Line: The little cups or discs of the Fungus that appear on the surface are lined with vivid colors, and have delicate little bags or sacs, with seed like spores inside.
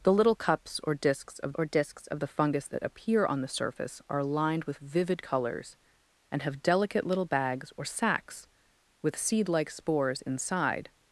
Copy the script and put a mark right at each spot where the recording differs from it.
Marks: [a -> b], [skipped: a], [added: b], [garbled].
The little cups or discs of [added: or discs of] the Fungus that appear on the surface are lined with vivid colors, and have delicate little bags or sacs, with seed like spores inside.